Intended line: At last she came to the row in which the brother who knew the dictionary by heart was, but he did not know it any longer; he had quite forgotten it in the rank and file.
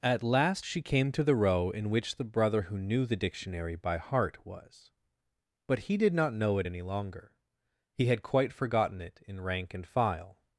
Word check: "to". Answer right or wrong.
right